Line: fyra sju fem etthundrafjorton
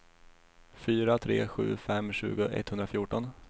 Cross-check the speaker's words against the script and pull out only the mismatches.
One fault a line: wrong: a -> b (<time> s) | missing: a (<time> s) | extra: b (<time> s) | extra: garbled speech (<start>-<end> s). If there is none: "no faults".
extra: tre (1.2 s)
extra: tjugo (2.1 s)